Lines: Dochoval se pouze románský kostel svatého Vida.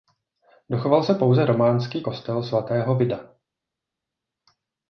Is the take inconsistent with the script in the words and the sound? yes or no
no